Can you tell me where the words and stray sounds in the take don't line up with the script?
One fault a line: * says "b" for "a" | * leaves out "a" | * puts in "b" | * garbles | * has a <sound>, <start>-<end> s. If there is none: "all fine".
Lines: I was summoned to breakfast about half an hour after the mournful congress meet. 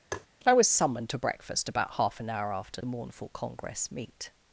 * has a tap, 0.1-0.3 s